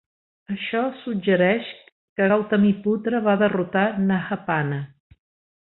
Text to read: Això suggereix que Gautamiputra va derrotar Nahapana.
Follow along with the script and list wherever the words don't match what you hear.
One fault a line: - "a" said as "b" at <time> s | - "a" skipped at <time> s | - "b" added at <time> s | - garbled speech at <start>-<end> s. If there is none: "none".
none